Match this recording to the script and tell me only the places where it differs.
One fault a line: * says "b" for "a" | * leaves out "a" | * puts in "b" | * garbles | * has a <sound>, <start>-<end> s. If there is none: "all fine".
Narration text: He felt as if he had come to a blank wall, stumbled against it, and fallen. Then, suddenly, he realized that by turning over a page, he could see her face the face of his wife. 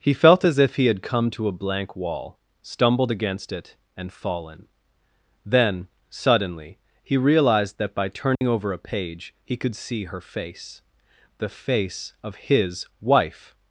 * has a dropout, 8.3-8.4 s